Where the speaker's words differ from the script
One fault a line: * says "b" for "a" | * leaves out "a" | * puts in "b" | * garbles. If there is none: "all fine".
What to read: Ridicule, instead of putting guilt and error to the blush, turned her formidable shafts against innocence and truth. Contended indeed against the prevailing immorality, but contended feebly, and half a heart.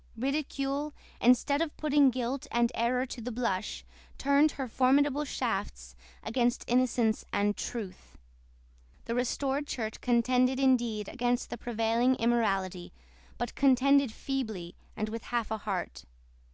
* puts in "The restored Church"
* puts in "with"